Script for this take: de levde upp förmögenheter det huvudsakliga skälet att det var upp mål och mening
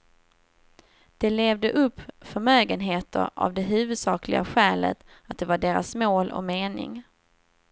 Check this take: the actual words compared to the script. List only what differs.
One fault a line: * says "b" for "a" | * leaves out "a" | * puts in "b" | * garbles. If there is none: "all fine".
* puts in "av"
* says "deras" for "upp"